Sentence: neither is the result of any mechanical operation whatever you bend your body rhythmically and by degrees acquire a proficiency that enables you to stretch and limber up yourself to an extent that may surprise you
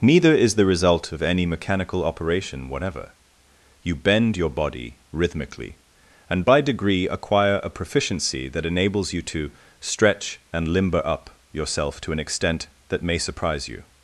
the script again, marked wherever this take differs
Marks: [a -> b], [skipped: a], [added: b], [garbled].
neither is the result of any mechanical operation whatever you bend your body rhythmically and by [degrees -> degree] acquire a proficiency that enables you to stretch and limber up yourself to an extent that may surprise you